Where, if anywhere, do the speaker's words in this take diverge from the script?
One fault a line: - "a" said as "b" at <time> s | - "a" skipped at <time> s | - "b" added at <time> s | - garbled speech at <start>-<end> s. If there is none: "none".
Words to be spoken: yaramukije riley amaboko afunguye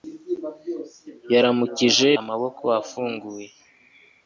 - "riley" skipped at 2.1 s